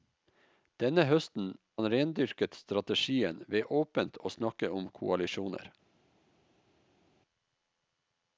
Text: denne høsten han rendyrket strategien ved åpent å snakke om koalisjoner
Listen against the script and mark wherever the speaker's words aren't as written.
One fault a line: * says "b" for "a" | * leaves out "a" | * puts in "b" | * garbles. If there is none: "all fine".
all fine